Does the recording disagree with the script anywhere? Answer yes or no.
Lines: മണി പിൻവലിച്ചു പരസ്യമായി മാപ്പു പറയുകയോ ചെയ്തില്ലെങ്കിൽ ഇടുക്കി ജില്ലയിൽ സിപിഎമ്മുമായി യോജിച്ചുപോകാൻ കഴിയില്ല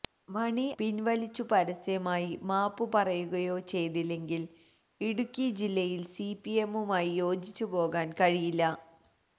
no